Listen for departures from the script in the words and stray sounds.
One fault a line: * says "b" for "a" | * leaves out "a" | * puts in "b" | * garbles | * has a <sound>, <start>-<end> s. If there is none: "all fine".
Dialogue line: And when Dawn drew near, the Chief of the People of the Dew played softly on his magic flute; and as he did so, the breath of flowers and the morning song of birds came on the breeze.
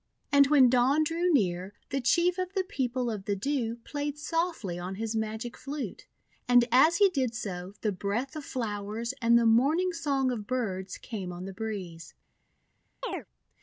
* has a chirp, 13.0-13.3 s